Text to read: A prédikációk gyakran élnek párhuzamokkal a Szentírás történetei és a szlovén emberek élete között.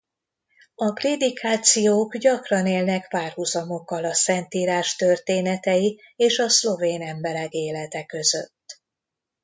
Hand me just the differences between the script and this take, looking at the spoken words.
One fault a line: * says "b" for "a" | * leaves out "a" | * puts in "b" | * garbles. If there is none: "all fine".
all fine